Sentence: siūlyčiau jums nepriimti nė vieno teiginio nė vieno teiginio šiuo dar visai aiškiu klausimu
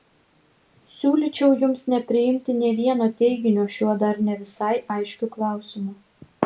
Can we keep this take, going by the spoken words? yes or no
no